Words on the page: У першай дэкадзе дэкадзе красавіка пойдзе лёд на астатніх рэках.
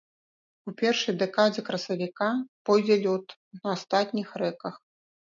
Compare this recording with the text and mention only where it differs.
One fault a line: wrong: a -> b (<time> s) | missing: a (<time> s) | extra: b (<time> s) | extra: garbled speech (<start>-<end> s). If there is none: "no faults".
missing: дэкадзе (1.6 s)